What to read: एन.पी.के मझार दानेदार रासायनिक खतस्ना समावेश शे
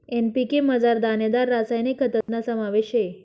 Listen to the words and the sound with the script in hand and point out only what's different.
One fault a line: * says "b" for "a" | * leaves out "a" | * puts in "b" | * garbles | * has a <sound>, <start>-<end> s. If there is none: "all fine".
* has a dropout, 2.2-2.3 s